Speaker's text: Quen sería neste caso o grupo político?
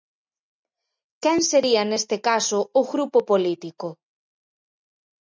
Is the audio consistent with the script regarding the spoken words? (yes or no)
yes